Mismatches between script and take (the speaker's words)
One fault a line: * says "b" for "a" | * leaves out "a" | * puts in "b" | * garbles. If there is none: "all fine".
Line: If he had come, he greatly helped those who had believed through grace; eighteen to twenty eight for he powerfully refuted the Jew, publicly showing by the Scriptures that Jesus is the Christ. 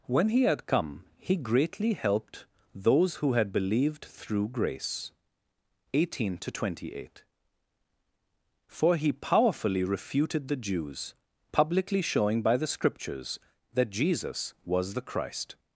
* says "When" for "If"
* says "Jews" for "Jew"
* says "was" for "is"